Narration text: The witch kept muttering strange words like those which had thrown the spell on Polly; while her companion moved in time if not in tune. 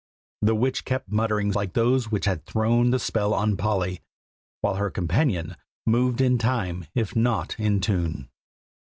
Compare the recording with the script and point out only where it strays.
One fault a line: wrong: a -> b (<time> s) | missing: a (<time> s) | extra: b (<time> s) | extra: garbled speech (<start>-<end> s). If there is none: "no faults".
missing: strange words (1.5 s)